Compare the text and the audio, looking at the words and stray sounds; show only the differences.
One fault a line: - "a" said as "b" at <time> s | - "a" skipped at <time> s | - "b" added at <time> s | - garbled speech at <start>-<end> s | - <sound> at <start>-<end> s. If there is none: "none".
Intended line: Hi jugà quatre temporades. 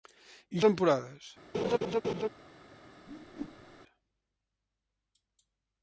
- "jugà quatre" skipped at 0.6 s
- laugh at 1.5-2.3 s
- whoosh at 3.1-3.8 s